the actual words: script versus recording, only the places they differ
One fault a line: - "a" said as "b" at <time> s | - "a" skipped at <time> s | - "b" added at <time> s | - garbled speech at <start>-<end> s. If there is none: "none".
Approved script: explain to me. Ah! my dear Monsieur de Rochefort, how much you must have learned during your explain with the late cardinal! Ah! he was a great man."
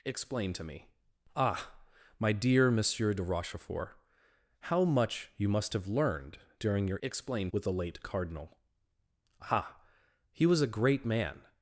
none